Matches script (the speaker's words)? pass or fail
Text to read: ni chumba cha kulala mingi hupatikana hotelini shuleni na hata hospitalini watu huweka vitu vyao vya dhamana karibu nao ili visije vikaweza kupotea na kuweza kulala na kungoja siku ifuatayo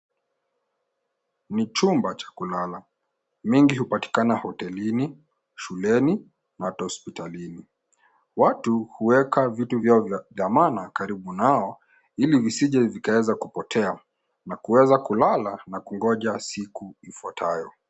pass